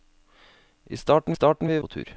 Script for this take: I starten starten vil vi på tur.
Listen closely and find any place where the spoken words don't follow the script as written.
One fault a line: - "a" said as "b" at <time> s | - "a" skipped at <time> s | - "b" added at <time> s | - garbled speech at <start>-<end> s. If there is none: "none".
none